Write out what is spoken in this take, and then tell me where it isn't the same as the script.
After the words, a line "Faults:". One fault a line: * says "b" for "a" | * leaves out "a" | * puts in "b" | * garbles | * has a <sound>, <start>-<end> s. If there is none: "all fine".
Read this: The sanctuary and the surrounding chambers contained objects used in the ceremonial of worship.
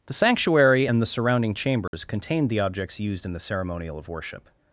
The sanctuary and the surrounding chambers contained the objects used in the ceremonial of worship.
Faults:
* has a dropout, 1.9-1.9 s
* puts in "the"